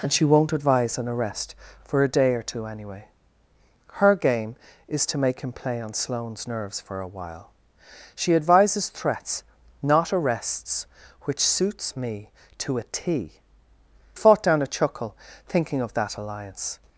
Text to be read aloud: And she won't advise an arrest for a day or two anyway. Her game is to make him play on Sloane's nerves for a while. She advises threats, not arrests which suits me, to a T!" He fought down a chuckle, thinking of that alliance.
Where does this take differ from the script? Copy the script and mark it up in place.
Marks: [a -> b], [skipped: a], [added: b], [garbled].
And she won't advise an arrest for a day or two anyway. Her game is to make him play on Sloane's nerves for a while. She advises threats, not arrests which suits me, to a T!" [skipped: He] fought down a chuckle, thinking of that alliance.